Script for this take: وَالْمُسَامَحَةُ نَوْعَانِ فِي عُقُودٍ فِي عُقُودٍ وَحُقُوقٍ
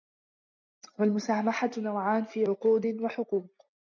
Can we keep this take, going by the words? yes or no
no